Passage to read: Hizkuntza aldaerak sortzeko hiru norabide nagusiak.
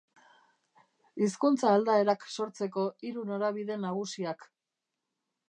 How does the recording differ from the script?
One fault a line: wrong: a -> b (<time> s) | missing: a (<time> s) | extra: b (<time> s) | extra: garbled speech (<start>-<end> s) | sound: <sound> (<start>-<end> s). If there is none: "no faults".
no faults